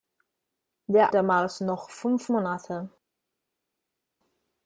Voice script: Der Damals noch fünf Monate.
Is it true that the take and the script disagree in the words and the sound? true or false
false